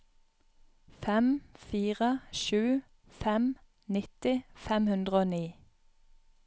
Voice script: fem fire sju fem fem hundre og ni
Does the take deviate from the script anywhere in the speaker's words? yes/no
yes